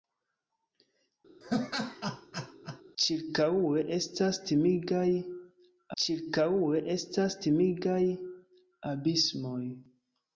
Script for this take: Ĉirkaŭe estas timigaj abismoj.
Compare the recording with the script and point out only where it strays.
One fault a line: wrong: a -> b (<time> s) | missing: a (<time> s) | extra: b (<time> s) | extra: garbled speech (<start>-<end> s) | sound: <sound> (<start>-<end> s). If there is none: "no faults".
sound: laugh (1.4-2.8 s)
extra: ĉirkaŭe estas timigaj (6.0 s)